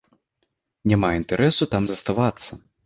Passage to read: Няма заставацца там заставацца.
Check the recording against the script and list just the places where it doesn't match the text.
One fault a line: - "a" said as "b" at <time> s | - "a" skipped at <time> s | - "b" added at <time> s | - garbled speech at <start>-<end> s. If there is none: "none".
- "заставацца" said as "інтарэсу" at 1.2 s